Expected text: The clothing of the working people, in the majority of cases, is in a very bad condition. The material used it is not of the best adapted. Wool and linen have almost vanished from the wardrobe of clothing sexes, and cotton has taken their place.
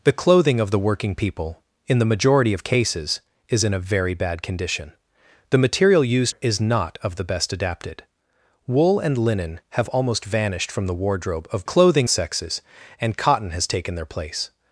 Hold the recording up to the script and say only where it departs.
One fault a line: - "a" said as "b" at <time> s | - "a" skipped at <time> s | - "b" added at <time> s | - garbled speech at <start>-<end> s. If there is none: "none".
none